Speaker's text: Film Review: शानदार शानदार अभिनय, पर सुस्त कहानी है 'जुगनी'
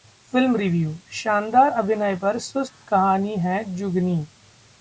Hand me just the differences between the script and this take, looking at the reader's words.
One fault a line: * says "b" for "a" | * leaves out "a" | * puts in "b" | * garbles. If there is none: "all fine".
* leaves out "शानदार"